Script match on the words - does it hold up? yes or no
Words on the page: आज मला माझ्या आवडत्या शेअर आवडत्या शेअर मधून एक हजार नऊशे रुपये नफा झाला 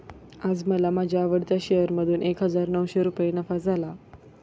no